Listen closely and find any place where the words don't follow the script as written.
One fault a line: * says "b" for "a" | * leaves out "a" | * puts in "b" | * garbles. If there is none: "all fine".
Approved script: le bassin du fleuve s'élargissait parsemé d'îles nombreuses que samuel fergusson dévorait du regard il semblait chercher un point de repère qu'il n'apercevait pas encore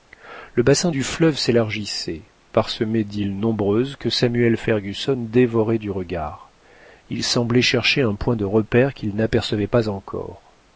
all fine